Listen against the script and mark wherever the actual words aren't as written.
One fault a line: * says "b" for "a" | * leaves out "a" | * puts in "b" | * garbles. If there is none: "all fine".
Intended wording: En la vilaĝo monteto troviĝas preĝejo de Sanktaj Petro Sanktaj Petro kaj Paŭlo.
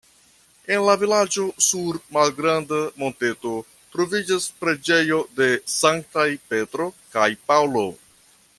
* puts in "sur malgranda"
* leaves out "Sanktaj Petro"